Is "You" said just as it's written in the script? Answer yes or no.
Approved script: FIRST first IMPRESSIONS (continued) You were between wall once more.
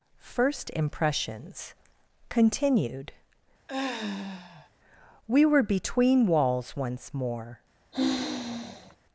no